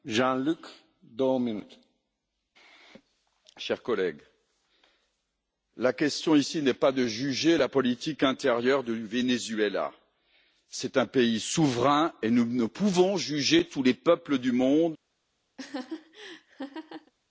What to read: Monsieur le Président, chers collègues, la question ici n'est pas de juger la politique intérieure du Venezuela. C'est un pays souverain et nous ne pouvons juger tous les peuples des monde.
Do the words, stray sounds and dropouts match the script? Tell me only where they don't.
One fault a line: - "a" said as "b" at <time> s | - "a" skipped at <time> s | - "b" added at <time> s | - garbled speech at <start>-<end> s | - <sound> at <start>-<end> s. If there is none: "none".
- "des" said as "du" at 14.4 s
- laugh at 15.6-17.1 s